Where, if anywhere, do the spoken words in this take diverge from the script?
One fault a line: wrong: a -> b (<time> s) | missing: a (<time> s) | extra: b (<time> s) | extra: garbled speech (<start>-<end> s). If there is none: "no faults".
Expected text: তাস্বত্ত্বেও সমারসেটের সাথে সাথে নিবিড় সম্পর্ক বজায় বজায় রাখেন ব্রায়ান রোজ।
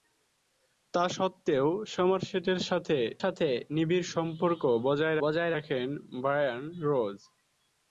no faults